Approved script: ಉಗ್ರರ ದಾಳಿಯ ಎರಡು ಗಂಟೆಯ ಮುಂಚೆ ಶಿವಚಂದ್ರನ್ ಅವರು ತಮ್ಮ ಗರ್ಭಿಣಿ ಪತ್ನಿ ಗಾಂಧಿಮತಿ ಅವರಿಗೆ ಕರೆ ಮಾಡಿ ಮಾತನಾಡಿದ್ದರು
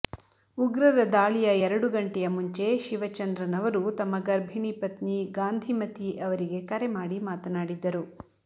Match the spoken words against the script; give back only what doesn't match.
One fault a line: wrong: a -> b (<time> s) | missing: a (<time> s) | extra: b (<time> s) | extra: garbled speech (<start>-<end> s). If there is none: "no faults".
no faults